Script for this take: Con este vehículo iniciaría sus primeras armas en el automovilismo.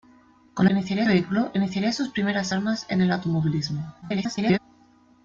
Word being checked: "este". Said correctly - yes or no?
no